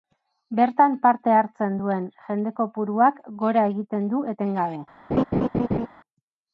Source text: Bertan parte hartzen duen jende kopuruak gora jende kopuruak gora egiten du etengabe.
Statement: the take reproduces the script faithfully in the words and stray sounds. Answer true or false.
false